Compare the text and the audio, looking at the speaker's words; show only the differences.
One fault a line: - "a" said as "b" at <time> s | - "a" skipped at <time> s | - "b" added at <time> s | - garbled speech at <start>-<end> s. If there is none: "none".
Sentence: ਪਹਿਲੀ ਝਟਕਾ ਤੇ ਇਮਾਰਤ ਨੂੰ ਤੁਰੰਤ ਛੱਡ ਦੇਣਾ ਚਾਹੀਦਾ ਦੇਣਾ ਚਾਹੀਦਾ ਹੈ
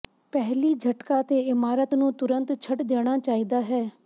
- "ਦੇਣਾ ਚਾਹੀਦਾ" skipped at 3.6 s